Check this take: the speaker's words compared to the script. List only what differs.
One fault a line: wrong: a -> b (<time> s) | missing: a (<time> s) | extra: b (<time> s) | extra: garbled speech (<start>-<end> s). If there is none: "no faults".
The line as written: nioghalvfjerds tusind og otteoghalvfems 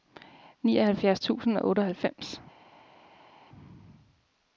no faults